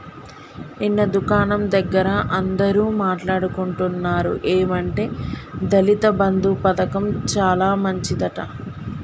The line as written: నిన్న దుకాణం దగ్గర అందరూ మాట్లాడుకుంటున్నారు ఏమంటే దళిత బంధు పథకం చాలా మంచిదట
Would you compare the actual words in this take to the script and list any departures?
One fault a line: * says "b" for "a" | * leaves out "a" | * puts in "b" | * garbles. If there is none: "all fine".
all fine